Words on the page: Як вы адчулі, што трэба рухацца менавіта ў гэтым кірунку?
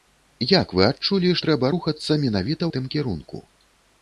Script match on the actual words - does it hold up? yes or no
no